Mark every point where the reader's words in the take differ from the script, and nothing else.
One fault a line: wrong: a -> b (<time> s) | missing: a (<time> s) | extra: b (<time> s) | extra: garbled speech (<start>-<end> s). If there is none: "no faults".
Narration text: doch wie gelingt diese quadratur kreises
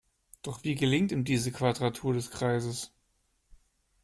extra: ihm (1.1 s)
extra: des (2.1 s)